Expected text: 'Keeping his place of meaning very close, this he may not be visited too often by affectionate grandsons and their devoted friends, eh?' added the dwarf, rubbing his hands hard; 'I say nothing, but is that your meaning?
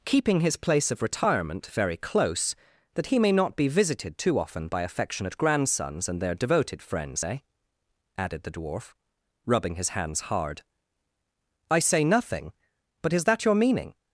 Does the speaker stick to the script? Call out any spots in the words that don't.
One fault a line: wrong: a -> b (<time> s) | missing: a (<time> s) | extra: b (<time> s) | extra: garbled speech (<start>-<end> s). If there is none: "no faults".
wrong: meaning -> retirement (1.0 s)
wrong: this -> that (3.0 s)